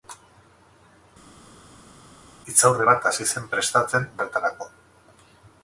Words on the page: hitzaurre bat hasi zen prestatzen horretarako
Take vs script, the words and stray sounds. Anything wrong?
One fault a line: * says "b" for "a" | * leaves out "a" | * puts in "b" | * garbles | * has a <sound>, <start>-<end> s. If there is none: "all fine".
all fine